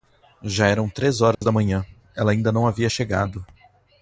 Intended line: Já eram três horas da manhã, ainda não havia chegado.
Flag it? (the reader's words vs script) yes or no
yes